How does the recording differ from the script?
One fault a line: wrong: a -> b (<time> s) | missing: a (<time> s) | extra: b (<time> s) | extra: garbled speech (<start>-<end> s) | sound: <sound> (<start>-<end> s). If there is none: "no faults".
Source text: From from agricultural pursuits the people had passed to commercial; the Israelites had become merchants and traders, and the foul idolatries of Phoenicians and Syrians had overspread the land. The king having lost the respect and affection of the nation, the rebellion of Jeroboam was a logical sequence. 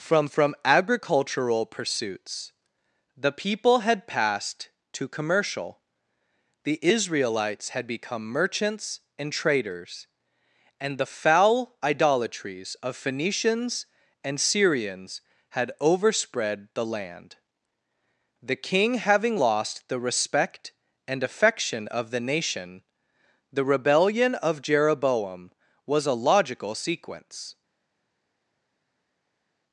no faults